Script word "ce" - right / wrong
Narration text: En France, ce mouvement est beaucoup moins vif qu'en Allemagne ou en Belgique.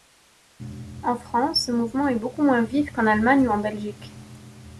wrong